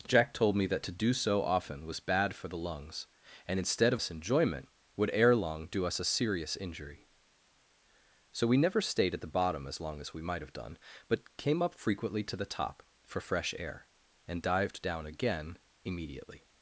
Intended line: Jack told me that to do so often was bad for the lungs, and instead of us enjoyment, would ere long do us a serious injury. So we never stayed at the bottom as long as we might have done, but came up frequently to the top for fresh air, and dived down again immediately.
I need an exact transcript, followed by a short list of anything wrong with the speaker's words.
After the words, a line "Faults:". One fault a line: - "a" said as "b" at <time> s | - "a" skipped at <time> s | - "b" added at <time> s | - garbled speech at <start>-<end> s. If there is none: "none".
Jack told me that to do so often was bad for the lungs, and instead of us enjoyment, would ere long do us a serious injury. So we never stayed at the bottom as long as we might have done, but came up frequently to the top for fresh air, and dived down again immediately.
Faults:
none